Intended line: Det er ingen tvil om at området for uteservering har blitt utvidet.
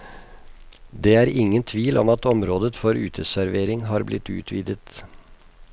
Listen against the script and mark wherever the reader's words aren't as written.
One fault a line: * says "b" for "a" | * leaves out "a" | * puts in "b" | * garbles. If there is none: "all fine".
all fine